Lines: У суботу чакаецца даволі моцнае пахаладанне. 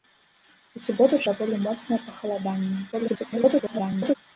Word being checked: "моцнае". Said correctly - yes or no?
yes